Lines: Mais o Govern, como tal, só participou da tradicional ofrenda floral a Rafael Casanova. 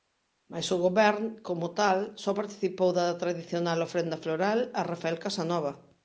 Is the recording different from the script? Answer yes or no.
no